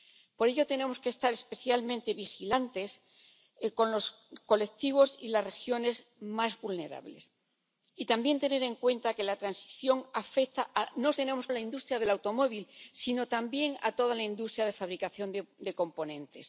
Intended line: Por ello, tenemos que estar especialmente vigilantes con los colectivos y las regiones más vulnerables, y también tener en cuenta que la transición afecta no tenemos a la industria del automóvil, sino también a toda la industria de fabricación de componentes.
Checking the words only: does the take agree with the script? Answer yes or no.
yes